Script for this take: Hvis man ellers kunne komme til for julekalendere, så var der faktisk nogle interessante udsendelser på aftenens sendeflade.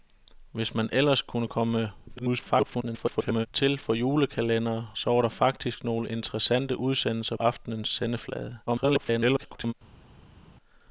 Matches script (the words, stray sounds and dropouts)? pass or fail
fail